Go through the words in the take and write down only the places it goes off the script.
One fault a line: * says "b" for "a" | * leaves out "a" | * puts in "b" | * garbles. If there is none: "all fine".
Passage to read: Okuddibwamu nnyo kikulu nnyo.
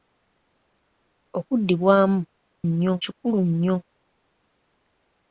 all fine